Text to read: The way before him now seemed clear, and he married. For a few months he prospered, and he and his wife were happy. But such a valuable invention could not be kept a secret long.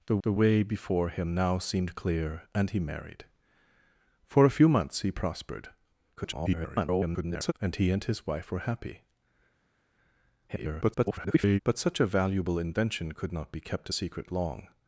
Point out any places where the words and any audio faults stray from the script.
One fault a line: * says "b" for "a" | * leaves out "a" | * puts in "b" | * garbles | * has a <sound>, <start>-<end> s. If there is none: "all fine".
* puts in "the"
* garbles
* garbles